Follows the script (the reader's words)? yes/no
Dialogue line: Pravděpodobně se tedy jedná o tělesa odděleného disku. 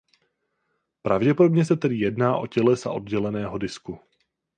yes